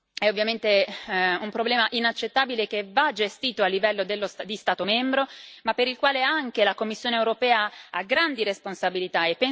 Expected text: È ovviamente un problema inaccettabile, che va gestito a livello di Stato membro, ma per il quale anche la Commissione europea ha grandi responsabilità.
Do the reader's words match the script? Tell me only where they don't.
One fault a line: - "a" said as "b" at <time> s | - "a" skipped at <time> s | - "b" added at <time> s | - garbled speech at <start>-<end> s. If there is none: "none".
none